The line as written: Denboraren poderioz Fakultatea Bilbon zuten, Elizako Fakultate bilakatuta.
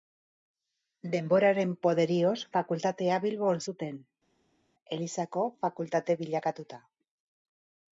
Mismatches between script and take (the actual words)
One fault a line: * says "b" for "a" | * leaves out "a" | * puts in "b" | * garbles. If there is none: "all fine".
all fine